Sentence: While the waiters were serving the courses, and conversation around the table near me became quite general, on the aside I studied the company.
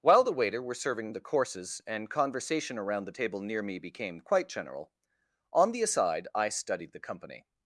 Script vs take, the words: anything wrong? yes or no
yes